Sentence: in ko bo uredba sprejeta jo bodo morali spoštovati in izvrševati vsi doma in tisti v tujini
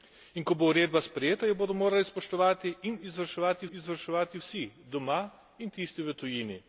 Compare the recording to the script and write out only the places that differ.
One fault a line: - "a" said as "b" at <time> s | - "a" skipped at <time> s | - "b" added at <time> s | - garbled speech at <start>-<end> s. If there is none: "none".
- "izvrševati" added at 3.7 s